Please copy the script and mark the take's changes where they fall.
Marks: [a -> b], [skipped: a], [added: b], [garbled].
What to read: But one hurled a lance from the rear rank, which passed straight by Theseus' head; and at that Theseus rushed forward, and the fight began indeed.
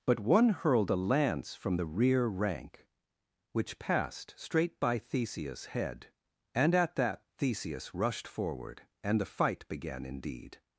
But one hurled a lance from the rear rank, which passed straight by Theseus' head; and at that Theseus rushed forward, and the fight began indeed.